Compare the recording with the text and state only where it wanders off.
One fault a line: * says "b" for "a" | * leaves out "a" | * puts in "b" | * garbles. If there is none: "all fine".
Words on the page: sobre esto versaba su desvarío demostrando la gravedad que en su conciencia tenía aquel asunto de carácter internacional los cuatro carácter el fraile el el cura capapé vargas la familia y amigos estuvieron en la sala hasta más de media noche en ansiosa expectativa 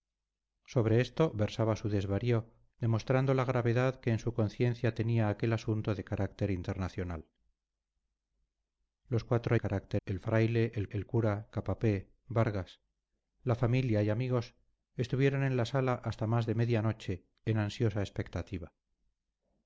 all fine